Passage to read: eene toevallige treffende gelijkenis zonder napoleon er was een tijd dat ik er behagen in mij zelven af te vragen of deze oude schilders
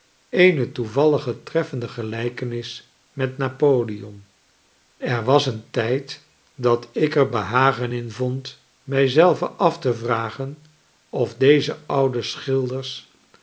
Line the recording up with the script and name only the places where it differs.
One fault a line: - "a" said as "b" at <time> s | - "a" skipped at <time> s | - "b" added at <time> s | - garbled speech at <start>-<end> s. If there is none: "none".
- "zonder" said as "met" at 3.1 s
- "vond" added at 8.1 s